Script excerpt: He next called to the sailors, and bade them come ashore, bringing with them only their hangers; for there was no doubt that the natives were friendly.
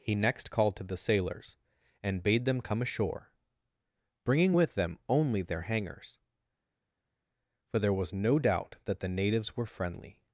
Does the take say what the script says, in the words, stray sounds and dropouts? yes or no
yes